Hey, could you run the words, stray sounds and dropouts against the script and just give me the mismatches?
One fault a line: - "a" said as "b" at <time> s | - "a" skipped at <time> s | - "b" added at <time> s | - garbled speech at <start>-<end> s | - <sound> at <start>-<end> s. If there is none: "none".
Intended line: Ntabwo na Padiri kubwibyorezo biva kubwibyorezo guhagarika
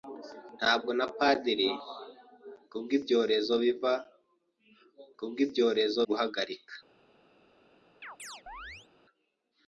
- chirp at 8.0-8.9 s